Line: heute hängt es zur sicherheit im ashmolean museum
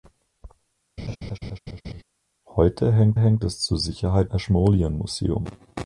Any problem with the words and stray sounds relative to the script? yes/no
yes